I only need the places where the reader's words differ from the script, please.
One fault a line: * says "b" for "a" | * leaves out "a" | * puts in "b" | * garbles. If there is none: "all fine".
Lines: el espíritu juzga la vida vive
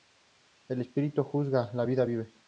all fine